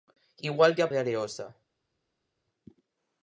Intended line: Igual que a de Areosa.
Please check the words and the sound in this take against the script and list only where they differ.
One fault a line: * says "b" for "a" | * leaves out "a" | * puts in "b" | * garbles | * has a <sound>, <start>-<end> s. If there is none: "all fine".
all fine